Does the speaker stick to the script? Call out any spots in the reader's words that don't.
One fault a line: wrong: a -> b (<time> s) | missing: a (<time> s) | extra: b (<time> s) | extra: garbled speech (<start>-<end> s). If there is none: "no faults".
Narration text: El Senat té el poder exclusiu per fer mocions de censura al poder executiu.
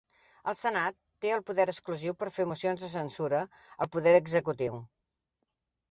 no faults